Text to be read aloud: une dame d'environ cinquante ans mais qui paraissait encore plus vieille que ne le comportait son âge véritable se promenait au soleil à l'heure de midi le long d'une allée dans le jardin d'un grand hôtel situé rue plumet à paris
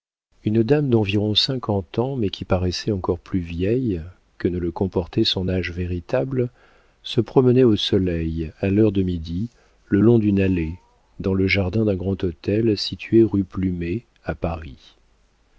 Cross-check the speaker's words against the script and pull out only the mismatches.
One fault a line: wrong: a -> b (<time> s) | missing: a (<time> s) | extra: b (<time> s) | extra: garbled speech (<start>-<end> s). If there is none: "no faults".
no faults